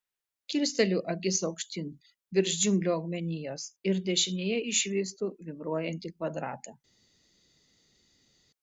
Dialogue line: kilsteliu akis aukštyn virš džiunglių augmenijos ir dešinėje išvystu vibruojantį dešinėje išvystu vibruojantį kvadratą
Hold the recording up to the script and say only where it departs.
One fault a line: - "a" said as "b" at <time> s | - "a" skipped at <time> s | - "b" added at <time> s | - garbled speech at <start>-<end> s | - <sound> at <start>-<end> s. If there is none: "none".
- "dešinėje išvystu vibruojantį" skipped at 6.1 s